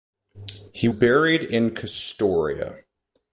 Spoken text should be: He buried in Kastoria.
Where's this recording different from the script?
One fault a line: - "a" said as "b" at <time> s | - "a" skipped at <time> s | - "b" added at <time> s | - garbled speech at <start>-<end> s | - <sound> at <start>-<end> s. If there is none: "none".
none